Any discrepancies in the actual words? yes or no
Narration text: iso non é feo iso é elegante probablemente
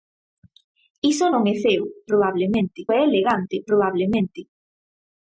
yes